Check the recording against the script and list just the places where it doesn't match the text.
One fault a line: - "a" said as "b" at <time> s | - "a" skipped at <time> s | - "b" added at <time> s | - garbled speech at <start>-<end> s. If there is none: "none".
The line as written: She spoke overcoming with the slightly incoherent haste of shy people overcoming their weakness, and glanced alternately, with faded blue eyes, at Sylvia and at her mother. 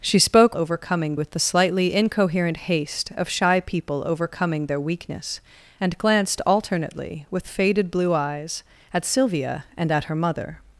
none